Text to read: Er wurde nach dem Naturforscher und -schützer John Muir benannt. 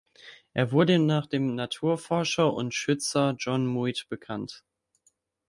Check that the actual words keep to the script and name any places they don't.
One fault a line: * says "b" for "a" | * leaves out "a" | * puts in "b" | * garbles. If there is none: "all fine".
all fine